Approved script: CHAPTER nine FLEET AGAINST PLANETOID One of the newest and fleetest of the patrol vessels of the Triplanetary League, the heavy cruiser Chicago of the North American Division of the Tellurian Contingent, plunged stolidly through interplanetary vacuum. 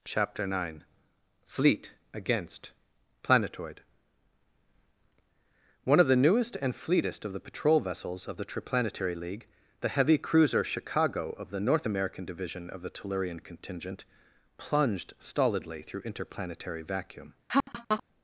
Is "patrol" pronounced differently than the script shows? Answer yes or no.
no